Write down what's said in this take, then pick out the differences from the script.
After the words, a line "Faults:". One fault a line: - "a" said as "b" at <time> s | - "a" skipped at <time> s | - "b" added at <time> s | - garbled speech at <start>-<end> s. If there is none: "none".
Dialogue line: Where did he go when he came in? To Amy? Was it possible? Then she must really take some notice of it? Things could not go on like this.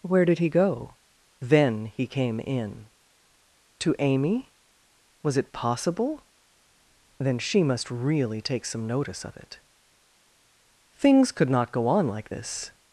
Where did he go then he came in? To Amy? Was it possible? Then she must really take some notice of it? Things could not go on like this.
Faults:
- "when" said as "then" at 1.4 s